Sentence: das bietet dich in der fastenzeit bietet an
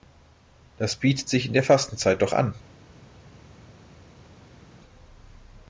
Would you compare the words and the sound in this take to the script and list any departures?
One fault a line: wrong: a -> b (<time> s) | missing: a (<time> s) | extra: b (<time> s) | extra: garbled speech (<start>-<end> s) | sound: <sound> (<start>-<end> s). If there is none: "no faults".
wrong: dich -> sich (1.3 s)
wrong: bietet -> doch (2.2 s)